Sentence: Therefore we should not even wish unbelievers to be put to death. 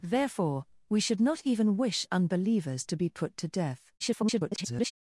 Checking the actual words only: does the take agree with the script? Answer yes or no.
no